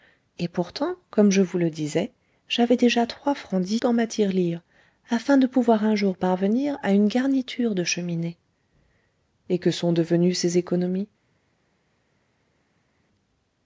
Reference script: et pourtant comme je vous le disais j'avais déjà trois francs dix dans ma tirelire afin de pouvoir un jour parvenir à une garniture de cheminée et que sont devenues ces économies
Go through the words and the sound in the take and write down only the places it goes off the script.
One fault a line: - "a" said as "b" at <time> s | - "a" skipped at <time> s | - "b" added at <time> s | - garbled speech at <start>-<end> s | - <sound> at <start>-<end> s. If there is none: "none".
none